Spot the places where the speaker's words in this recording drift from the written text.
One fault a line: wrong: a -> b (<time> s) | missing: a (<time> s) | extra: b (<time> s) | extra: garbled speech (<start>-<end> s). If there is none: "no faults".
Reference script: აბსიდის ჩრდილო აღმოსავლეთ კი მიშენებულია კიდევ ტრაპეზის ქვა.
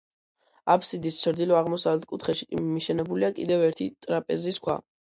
extra: კუთხეში (2.1 s)
extra: ერთი (3.7 s)